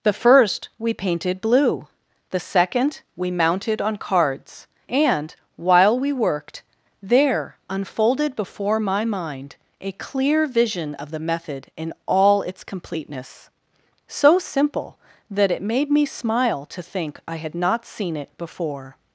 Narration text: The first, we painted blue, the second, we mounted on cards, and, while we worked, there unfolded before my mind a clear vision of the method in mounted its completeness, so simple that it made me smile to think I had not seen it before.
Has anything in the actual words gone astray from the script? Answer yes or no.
yes